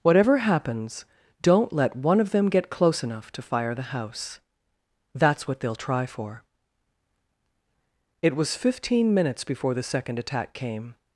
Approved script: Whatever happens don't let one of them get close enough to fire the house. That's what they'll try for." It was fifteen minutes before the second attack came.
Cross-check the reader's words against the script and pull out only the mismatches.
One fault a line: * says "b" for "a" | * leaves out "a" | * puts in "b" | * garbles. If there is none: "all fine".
all fine